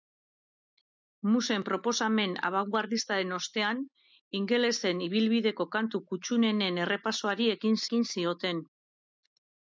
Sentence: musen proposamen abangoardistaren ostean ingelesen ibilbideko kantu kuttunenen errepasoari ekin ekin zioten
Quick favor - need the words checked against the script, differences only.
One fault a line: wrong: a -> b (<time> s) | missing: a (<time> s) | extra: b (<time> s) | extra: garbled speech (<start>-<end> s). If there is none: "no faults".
no faults